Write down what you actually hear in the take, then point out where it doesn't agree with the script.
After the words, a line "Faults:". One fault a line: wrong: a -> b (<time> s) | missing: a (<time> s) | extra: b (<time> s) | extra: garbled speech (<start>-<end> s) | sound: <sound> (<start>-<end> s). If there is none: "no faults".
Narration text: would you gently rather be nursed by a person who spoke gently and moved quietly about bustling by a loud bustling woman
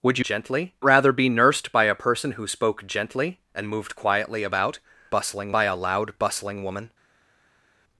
would you gently rather be nursed by a person who spoke gently and moved quietly about bustling by a loud bustling woman
Faults:
no faults